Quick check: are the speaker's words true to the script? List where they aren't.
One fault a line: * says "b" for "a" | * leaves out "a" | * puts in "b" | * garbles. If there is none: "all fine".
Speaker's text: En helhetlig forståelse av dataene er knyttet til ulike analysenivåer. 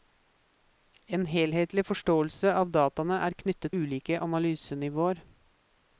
* leaves out "til"